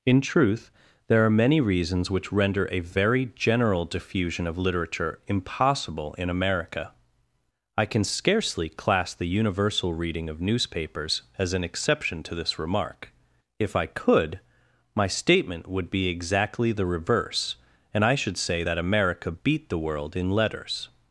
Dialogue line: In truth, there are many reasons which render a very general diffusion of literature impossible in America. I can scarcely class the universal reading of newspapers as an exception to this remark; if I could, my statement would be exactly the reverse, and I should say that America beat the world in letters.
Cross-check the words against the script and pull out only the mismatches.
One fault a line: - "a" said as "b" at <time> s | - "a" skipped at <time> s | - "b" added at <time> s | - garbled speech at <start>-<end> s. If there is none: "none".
none